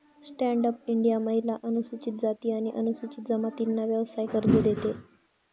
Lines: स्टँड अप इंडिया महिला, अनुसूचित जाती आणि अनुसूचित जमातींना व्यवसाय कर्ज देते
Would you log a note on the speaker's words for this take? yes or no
no